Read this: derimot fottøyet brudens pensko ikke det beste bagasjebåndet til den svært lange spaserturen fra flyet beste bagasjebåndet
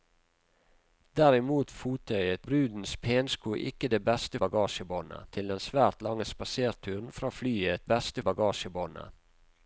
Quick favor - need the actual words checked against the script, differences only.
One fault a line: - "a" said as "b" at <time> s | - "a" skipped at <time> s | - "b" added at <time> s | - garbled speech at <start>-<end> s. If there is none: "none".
none